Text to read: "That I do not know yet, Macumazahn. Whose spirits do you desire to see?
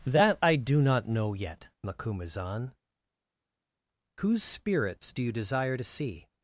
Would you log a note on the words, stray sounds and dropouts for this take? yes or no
no